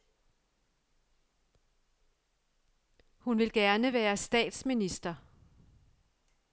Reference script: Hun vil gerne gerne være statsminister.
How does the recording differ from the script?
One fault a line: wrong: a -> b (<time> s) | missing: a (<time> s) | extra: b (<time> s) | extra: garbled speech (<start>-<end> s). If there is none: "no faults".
missing: gerne (3.9 s)